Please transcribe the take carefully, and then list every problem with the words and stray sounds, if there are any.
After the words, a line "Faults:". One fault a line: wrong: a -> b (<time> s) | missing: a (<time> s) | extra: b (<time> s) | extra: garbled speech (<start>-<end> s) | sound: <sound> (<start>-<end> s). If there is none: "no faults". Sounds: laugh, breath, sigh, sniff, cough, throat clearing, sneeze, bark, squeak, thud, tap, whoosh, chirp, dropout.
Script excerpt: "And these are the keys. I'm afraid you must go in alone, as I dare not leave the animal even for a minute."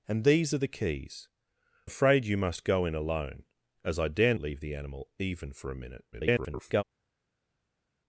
"And these are the keys. Afraid you must go in alone, as I dare leave the animal even for a minute." [garbled]
Faults:
missing: I'm (1.3 s)
missing: not (4.3 s)
extra: garbled speech (6.1-6.8 s)